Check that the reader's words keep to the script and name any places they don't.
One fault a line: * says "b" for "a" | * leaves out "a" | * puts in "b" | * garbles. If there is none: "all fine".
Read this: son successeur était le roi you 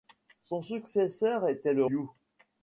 * leaves out "roi"